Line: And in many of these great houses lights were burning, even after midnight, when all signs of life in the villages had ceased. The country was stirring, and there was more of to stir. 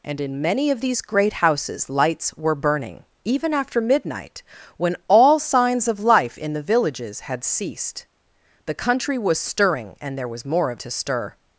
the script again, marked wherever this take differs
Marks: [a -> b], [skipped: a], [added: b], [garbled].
And in many of these great houses lights were burning, even after midnight, when all signs of life in the villages had ceased. The country was stirring, and there was more of to stir.